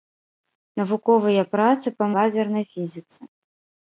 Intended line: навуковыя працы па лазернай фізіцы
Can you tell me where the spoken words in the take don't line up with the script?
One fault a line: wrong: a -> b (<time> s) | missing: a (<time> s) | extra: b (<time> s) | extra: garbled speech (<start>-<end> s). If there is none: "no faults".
no faults